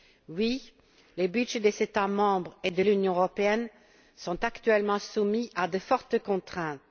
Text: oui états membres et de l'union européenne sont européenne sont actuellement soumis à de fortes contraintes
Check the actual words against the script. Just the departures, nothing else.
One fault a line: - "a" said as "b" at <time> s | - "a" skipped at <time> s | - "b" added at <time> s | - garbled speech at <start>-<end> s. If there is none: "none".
- "les budgets des" added at 1.2 s
- "européenne sont" skipped at 4.4 s